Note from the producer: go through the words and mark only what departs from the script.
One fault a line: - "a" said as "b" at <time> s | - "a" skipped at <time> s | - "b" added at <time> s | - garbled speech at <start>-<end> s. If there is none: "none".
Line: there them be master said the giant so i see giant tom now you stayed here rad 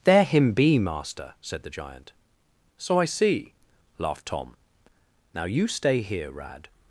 - "them" said as "him" at 0.2 s
- "giant" said as "laughed" at 4.0 s
- "stayed" said as "stay" at 5.7 s